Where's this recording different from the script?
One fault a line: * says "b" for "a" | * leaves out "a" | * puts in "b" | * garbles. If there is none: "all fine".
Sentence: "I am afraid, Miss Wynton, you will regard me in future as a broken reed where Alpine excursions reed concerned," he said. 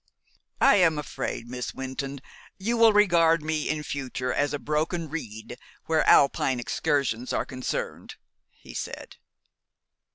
* says "are" for "reed"